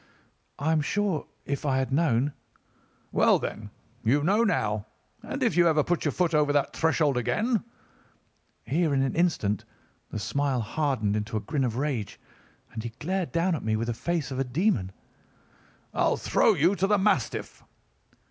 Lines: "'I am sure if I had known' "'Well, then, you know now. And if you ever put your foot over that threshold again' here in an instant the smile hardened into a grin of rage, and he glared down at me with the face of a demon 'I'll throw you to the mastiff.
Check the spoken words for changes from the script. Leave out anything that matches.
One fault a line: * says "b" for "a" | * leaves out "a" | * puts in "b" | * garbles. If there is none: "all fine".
all fine